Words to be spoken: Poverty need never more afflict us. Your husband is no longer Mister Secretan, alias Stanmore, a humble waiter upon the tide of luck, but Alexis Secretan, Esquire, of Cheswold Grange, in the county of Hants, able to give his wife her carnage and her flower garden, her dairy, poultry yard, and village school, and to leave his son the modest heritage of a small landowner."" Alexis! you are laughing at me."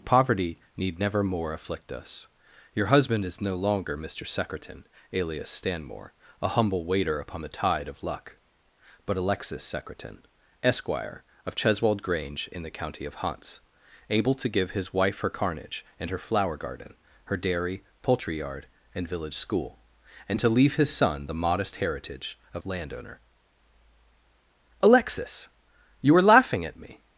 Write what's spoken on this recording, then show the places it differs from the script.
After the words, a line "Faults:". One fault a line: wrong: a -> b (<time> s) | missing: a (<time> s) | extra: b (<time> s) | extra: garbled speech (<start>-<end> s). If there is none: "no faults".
Poverty need never more afflict us. Your husband is no longer Mister Secretan, alias Stanmore, a humble waiter upon the tide of luck, but Alexis Secretan, Esquire, of Cheswold Grange, in the county of Hants, able to give his wife her carnage and her flower garden, her dairy, poultry yard, and village school, and to leave his son the modest heritage of landowner."" Alexis! you are laughing at me."
Faults:
missing: a small (22.6 s)